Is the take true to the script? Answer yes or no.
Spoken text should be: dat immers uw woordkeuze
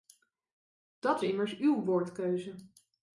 yes